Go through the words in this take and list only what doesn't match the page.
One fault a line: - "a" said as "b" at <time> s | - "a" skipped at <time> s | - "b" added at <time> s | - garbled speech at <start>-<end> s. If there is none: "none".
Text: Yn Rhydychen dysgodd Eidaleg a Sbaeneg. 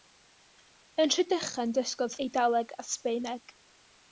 none